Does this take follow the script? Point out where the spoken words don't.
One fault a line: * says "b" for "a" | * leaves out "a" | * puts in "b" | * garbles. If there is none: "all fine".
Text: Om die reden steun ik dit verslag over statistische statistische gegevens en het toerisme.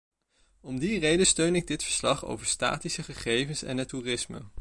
* leaves out "statistische"